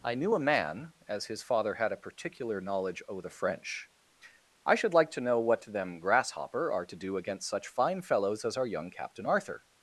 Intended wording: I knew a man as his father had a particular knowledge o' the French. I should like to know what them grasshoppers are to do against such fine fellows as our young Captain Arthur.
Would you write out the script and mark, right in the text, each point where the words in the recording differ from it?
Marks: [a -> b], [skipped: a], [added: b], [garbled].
I knew a man as his father had a particular knowledge o' the French. I should like to know what them [grasshoppers -> grasshopper] are to do against such fine fellows as our young Captain Arthur.